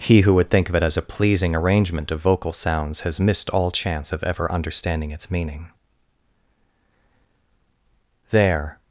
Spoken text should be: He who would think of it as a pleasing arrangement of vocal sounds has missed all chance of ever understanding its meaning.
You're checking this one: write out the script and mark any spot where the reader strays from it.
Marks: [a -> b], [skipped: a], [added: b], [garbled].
He who would think of it as a pleasing arrangement of vocal sounds has missed all chance of ever understanding its meaning. [added: There]